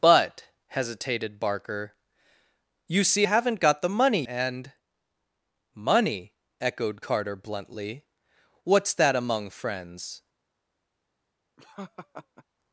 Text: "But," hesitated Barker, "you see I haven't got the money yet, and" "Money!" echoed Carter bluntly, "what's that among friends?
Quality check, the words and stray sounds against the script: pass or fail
fail